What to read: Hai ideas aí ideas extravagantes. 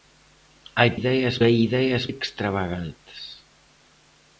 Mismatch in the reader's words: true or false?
false